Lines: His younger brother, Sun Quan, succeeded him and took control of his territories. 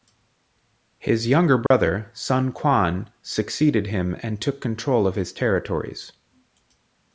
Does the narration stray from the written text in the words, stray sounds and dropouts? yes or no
yes